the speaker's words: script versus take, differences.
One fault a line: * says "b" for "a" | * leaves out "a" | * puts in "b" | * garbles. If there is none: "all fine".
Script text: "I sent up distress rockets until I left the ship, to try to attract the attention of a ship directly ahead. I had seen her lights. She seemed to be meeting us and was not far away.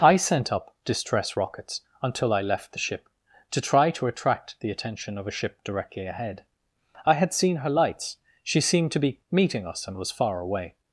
* leaves out "not"